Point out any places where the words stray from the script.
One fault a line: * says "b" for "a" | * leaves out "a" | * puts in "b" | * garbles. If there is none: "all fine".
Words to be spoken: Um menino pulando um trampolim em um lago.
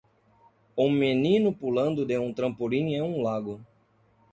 * puts in "de"